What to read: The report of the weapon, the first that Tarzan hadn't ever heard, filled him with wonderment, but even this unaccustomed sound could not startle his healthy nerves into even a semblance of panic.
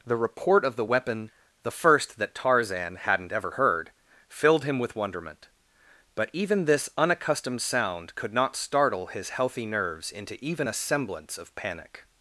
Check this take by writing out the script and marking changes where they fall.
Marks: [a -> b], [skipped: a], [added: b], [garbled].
The report of the weapon, the first that Tarzan hadn't ever heard, filled him with wonderment, but even this unaccustomed sound could not startle his healthy nerves into even a semblance of panic.